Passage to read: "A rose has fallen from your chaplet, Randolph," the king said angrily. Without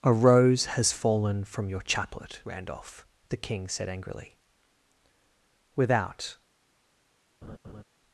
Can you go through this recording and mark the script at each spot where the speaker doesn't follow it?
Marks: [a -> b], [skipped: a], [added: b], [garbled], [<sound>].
"A rose has fallen from your chaplet, Randolph," the king said angrily. Without [laugh]